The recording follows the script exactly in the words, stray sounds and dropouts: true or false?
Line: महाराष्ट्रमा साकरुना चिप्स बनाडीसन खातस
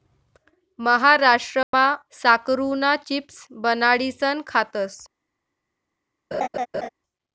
false